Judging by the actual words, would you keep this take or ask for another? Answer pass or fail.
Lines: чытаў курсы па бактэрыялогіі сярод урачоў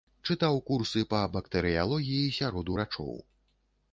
pass